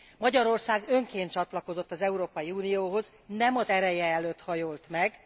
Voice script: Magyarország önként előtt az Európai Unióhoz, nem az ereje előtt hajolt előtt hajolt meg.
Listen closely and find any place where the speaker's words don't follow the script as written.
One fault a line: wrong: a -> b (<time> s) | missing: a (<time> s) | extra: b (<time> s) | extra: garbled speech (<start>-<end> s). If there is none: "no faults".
wrong: előtt -> csatlakozott (1.3 s)
missing: előtt hajolt (4.8 s)